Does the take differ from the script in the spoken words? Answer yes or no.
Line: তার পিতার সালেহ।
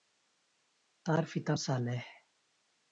no